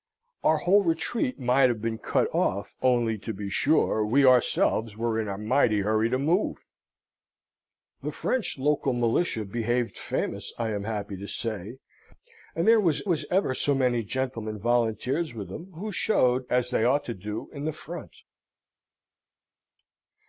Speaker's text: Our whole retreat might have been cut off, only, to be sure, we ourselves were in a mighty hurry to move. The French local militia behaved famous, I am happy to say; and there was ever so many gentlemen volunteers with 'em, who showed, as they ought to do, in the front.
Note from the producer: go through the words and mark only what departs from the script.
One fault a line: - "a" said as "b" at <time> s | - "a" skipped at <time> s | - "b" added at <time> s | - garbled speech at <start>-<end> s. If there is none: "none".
- "was" added at 13.1 s